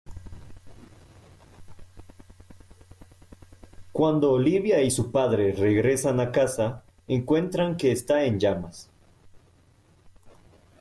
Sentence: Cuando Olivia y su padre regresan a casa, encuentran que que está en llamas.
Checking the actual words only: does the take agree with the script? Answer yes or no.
no